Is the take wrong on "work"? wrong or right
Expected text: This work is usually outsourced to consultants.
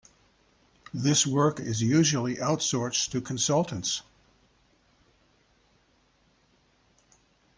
right